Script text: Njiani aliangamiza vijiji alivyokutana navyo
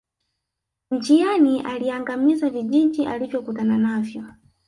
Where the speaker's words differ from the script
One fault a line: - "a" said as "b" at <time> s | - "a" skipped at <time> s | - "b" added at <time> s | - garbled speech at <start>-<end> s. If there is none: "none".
none